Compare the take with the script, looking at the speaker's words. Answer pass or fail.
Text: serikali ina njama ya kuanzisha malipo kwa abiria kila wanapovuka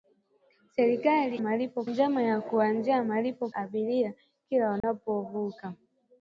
fail